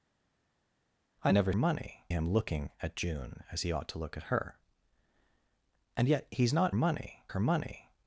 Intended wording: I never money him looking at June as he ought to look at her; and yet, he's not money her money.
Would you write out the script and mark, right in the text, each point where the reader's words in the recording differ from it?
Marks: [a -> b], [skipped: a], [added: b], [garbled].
I never money him looking at June as he ought to look at her; and yet, he's not money her money.